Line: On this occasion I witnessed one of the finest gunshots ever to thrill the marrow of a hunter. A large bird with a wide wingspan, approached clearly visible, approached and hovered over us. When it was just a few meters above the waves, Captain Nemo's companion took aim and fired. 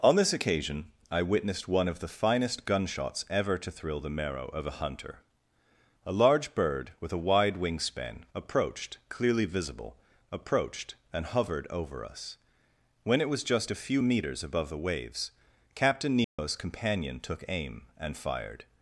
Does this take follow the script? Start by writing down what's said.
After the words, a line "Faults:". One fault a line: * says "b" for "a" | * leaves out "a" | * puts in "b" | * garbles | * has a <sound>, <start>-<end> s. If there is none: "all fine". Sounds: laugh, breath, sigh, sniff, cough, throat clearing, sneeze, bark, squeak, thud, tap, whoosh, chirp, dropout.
On this occasion I witnessed one of the finest gunshots ever to thrill the marrow of a hunter. A large bird with a wide wingspan, approached clearly visible, approached and hovered over us. When it was just a few meters above the waves, Captain Nemo's companion took aim and fired.
Faults:
* has a dropout, 16.2-16.4 s